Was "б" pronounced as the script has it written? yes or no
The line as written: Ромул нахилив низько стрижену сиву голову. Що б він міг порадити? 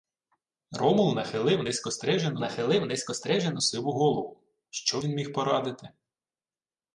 no